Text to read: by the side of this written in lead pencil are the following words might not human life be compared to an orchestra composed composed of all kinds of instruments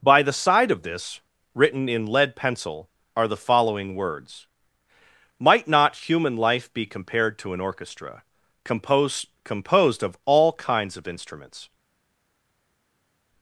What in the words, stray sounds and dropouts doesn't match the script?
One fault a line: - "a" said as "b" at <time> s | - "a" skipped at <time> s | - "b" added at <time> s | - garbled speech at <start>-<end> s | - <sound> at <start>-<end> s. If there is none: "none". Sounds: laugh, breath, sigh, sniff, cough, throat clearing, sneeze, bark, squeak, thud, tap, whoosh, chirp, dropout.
none